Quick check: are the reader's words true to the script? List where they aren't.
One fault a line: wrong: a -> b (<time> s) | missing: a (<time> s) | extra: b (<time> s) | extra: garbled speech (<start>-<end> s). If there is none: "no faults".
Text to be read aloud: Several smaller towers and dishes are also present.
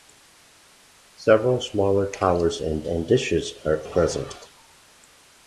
extra: and (2.9 s)
missing: also (3.8 s)